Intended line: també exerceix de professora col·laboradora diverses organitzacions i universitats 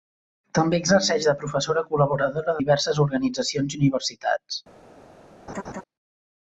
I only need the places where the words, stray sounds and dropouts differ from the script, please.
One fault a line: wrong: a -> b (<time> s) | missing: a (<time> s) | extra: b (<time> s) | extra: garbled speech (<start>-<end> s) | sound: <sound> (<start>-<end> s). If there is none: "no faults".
sound: laugh (5.5-5.8 s)